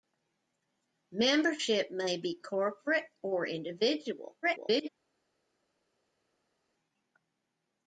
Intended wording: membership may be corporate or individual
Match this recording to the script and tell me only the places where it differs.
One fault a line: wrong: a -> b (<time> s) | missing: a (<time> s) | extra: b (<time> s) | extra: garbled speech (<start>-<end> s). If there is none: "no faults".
extra: garbled speech (4.4-4.9 s)